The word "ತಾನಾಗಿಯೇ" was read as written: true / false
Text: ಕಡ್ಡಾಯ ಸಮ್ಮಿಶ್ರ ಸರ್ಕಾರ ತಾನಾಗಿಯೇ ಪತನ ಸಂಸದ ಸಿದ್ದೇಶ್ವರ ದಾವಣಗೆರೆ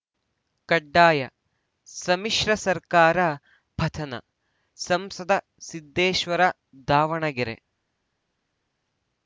false